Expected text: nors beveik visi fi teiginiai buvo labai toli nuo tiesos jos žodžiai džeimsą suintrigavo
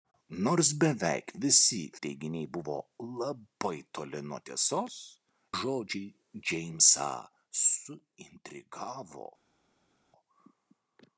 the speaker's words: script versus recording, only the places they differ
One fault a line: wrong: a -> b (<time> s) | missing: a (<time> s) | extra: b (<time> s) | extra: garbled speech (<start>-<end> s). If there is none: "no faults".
missing: fi (1.8 s)
missing: jos (4.9 s)